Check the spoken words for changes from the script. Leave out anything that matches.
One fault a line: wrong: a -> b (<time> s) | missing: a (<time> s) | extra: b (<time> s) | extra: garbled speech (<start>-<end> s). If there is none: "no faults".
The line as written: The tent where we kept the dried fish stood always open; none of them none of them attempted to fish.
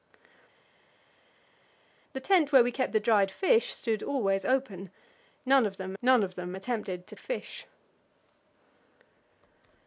no faults